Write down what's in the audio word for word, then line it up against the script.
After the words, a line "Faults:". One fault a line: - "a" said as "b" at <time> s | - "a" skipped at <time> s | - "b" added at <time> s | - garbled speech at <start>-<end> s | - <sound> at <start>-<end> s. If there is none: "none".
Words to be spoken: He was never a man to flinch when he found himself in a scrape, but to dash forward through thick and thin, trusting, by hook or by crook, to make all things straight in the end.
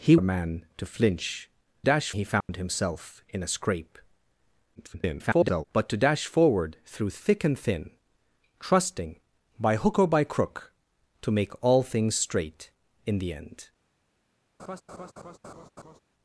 He a man to flinch dash he found himself in a scrape, [garbled] but to dash forward through thick and thin, trusting, by hook or by crook, to make all things straight in the end.
Faults:
- "was never" skipped at 0.1 s
- "when" said as "dash" at 1.8 s
- dropout at 2.4-2.5 s
- garbled speech at 4.7-5.6 s
- laugh at 14.6-16.0 s